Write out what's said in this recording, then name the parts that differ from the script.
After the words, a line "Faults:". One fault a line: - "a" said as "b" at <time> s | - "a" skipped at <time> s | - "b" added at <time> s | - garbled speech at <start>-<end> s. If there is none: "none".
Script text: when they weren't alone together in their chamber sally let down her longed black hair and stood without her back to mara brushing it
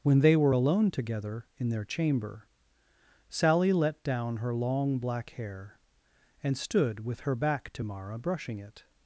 when they were alone together in their chamber sally let down her long black hair and stood with her back to mara brushing it
Faults:
- "weren't" said as "were" at 0.3 s
- "longed" said as "long" at 4.5 s
- "without" said as "with" at 7.0 s